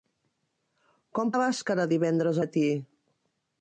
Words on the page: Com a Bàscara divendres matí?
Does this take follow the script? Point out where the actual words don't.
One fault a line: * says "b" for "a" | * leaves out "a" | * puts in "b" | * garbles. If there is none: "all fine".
all fine